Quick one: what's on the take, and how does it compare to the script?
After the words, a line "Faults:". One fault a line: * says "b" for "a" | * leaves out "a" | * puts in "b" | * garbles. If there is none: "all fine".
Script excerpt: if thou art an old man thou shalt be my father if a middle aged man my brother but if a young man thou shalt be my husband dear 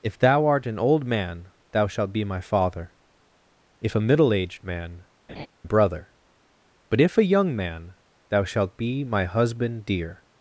if thou art an old man thou shalt be my father if a middle aged man brother but if a young man thou shalt be my husband dear
Faults:
* leaves out "my"